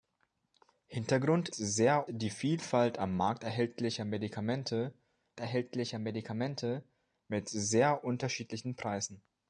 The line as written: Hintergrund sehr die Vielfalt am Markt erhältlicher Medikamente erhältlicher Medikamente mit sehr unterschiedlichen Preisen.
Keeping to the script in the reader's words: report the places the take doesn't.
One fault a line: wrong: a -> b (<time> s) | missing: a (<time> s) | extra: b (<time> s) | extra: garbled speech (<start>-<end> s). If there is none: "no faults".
no faults